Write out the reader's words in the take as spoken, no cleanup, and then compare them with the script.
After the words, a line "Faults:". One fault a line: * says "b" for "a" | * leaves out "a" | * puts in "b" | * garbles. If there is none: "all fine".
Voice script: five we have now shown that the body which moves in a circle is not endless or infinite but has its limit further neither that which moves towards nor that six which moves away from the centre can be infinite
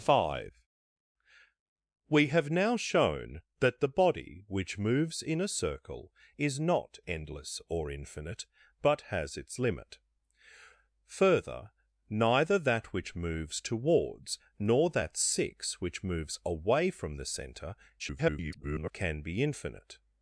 five we have now shown that the body which moves in a circle is not endless or infinite but has its limit further neither that which moves towards nor that six which moves away from the centre [garbled] can be infinite
Faults:
* garbles